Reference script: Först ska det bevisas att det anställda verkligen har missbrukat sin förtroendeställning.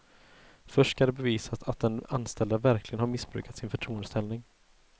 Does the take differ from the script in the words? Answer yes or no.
yes